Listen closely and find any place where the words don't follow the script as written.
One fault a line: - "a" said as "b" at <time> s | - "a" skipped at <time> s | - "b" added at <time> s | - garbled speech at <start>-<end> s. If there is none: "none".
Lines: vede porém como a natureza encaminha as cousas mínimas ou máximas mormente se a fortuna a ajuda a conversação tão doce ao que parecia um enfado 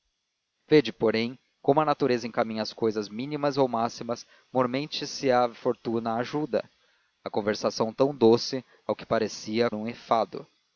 none